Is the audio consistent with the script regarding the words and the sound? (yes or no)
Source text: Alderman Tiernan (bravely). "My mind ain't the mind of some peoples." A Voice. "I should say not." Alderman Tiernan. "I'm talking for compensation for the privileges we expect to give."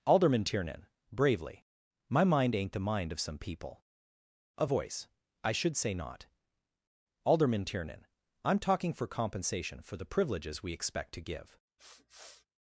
no